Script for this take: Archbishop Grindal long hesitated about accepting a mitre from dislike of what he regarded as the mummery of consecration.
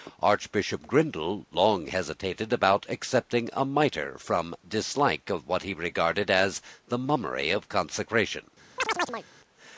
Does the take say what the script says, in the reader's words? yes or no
yes